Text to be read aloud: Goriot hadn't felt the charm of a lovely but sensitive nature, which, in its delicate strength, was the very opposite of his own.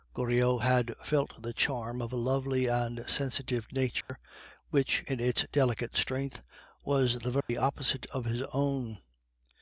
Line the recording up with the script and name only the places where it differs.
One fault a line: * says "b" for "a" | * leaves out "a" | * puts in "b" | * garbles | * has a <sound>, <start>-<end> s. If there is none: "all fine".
* says "had" for "hadn't"
* says "and" for "but"
* has a dropout, 4.0-4.1 s
* has a dropout, 7.4-7.5 s